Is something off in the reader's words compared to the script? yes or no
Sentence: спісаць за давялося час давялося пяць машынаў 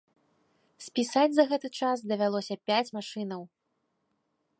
yes